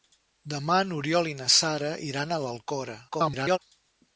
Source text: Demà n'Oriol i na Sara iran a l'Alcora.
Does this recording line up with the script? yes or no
no